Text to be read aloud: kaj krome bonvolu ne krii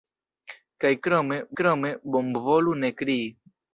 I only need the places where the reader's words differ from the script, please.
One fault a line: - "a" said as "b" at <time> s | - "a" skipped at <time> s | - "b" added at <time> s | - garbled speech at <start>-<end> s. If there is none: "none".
- "krome" added at 1.6 s